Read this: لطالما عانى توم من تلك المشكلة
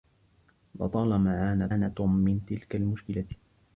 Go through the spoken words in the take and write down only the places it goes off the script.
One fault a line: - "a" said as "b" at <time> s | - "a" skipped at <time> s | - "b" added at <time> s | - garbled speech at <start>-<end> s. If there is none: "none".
- "عانى" added at 1.7 s